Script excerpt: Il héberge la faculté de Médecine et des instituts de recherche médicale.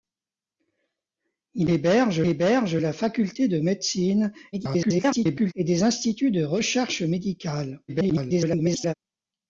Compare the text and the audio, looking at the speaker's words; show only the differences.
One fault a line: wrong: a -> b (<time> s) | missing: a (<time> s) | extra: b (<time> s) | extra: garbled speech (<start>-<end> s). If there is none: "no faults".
extra: héberge (2.3 s)
extra: garbled speech (4.5-5.5 s)
extra: garbled speech (7.9-8.9 s)